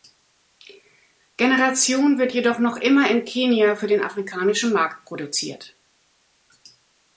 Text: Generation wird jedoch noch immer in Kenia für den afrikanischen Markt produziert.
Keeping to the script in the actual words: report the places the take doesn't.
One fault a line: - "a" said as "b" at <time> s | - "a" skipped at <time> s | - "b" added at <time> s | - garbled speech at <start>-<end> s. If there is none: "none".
none